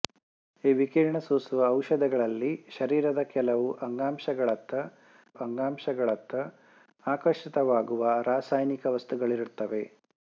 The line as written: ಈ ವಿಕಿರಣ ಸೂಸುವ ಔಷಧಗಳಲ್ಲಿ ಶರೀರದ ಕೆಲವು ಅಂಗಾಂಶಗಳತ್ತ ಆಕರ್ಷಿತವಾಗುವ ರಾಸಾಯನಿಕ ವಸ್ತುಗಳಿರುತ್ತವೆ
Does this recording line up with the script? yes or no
no